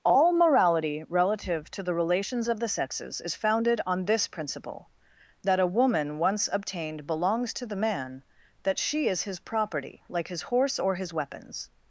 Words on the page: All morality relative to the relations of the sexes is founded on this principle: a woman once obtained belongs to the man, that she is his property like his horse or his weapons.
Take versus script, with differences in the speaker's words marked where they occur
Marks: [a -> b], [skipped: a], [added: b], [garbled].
All morality relative to the relations of the sexes is founded on this principle: [added: that] a woman once obtained belongs to the man, that she is his property like his horse or his weapons.